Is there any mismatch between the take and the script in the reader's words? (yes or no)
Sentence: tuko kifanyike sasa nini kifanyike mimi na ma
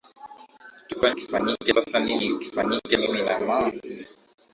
no